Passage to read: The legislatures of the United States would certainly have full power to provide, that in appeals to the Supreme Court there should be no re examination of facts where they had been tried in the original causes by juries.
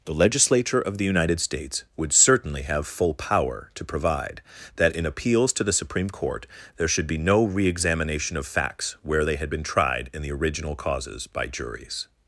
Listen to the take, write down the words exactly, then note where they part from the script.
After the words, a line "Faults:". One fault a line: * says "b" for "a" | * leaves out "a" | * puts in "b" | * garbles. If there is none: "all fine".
The legislature of the United States would certainly have full power to provide, that in appeals to the Supreme Court there should be no re examination of facts where they had been tried in the original causes by juries.
Faults:
* says "legislature" for "legislatures"